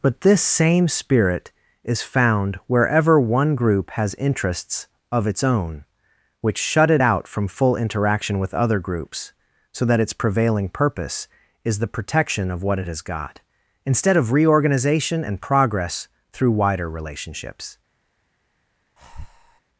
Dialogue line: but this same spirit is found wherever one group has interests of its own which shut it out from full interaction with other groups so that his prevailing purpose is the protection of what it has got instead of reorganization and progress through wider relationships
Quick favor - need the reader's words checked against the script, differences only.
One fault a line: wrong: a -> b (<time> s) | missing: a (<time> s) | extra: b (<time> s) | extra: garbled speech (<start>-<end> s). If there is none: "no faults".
wrong: his -> its (10.0 s)